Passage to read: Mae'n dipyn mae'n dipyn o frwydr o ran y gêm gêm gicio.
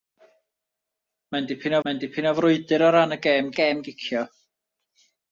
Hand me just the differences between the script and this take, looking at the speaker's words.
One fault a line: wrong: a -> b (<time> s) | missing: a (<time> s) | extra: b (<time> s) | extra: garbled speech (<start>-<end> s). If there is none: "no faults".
no faults